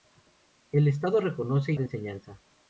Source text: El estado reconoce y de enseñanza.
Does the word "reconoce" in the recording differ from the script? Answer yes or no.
no